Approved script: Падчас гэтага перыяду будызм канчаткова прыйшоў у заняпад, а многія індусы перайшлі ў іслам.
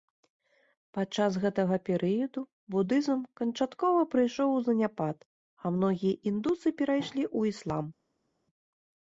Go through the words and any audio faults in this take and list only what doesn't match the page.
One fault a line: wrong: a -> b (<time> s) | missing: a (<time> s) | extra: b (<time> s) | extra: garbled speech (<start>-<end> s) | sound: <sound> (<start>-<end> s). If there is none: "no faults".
no faults